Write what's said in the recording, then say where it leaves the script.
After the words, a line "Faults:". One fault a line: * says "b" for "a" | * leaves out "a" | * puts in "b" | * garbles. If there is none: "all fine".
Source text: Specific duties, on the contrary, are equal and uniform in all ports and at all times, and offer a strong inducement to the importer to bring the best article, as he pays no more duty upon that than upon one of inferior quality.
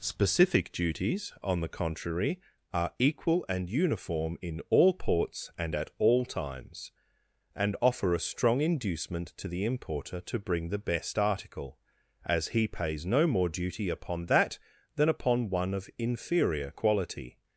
Specific duties, on the contrary, are equal and uniform in all ports and at all times, and offer a strong inducement to the importer to bring the best article, as he pays no more duty upon that than upon one of inferior quality.
Faults:
all fine